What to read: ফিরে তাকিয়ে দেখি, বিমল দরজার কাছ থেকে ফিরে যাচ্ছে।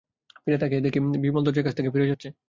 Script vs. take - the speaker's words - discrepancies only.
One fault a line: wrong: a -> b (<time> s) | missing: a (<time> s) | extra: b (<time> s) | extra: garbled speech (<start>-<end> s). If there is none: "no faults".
no faults